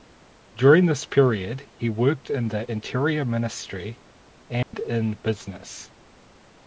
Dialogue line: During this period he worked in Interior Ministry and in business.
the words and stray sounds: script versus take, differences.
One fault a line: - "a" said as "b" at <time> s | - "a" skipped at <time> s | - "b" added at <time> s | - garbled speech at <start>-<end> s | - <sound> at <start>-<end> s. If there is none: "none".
- "the" added at 2.5 s
- dropout at 4.6-4.7 s